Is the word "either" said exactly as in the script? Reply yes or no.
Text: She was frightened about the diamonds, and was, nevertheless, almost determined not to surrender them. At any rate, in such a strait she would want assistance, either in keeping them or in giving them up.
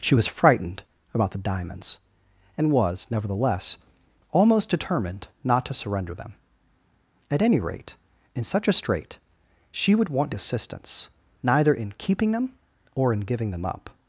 no